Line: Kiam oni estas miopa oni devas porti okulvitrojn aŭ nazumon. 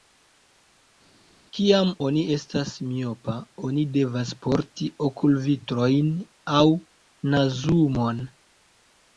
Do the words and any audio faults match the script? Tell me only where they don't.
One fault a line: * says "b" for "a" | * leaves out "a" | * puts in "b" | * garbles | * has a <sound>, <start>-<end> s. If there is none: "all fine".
all fine